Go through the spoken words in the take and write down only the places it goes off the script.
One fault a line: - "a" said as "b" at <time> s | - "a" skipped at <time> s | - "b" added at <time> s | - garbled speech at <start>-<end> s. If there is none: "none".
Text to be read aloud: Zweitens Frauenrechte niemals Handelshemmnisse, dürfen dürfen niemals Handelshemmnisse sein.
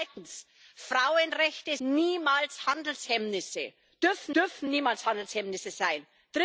none